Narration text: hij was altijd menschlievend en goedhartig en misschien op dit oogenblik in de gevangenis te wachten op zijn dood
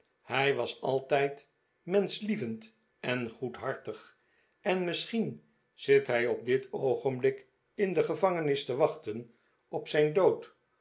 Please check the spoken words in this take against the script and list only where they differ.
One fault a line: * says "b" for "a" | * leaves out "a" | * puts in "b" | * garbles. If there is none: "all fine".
* puts in "zit hij"